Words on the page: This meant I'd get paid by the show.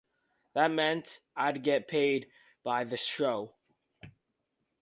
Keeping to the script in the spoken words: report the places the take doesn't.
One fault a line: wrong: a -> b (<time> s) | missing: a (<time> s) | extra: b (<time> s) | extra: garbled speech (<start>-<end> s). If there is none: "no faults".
wrong: This -> That (0.6 s)